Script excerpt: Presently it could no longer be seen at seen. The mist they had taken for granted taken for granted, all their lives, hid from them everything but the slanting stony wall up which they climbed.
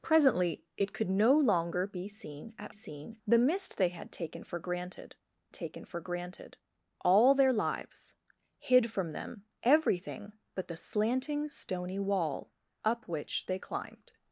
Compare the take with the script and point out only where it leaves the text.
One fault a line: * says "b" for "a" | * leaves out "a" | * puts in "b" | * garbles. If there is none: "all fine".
all fine